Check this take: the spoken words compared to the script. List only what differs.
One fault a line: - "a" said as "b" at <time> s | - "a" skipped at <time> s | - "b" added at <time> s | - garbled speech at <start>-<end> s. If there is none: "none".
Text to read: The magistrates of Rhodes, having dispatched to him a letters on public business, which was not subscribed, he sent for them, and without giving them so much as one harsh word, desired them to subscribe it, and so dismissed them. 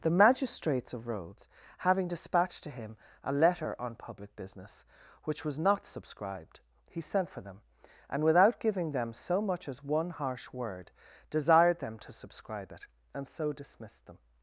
- "letters" said as "letter" at 3.3 s